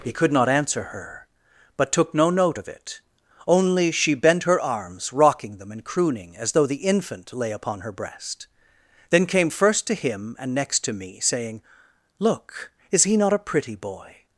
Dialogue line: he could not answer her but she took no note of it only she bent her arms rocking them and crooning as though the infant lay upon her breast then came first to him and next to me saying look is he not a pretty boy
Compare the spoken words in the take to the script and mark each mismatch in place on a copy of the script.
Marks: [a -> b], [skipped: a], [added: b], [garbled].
he could not answer her but [skipped: she] took no note of it only she bent her arms rocking them and crooning as though the infant lay upon her breast then came first to him and next to me saying look is he not a pretty boy